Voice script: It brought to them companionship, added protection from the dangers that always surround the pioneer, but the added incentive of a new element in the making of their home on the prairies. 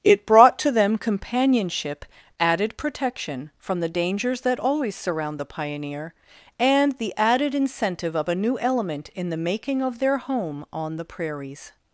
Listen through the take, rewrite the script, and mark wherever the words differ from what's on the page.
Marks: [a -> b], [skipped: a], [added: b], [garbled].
It brought to them companionship, added protection from the dangers that always surround the pioneer, [but -> and] the added incentive of a new element in the making of their home on the prairies.